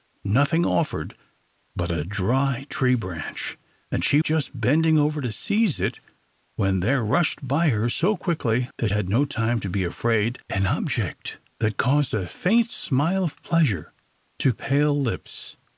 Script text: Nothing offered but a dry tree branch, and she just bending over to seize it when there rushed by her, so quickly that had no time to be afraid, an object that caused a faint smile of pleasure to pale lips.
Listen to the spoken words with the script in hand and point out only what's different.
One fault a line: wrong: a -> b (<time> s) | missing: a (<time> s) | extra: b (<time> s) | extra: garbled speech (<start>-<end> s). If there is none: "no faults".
no faults